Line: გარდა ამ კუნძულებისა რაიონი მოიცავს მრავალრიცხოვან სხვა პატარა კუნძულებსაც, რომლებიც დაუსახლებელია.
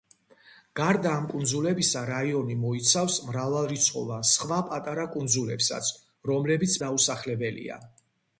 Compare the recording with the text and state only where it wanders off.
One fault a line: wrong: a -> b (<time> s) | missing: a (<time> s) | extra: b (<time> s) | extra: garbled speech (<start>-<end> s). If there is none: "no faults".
no faults